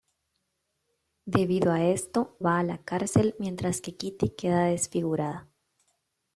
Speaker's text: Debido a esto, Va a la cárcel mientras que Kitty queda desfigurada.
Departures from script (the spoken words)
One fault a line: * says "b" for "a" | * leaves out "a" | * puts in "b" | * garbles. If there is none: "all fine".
all fine